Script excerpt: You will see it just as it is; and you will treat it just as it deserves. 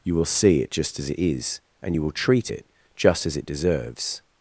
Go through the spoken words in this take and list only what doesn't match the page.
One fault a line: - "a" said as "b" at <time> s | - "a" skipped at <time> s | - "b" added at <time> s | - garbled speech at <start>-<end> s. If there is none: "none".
none